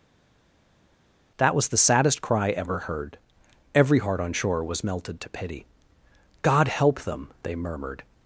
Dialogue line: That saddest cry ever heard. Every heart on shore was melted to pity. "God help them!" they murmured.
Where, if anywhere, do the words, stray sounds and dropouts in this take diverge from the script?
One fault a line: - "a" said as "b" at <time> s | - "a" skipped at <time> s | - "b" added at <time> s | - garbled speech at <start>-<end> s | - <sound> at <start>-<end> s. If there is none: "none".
- "was the" added at 1.6 s